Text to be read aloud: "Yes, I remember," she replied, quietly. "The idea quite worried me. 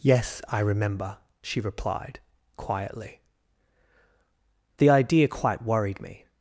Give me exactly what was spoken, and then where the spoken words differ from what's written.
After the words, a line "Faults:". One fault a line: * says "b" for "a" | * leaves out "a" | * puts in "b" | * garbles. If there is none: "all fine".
"Yes, I remember," she replied, quietly. "The idea quite worried me.
Faults:
all fine